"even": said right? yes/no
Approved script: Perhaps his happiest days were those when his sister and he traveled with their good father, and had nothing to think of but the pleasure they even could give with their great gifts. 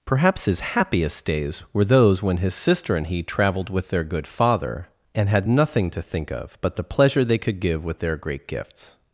no